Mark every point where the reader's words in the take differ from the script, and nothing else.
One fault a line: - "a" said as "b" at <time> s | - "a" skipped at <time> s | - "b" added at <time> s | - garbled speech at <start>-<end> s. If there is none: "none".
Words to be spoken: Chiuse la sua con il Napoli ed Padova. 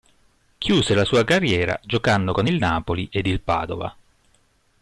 - "carriera giocando" added at 1.2 s
- "il" added at 3.3 s